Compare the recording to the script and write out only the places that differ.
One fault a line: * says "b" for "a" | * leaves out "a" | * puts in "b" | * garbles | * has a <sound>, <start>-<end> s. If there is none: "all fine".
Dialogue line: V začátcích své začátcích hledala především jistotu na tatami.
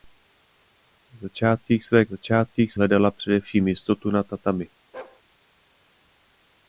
* has a bark, 4.9-5.2 s